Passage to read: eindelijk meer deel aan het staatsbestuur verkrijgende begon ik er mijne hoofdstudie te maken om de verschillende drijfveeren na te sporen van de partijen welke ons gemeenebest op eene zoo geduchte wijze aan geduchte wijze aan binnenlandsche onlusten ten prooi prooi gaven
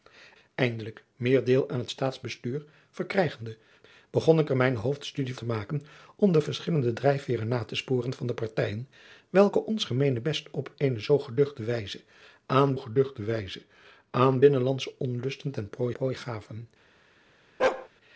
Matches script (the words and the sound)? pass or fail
fail